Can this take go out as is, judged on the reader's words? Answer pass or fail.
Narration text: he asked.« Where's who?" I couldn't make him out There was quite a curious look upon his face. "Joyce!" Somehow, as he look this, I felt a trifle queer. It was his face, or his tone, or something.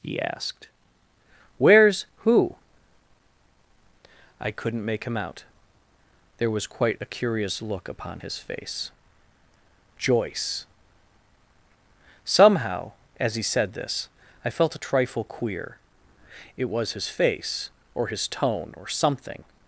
fail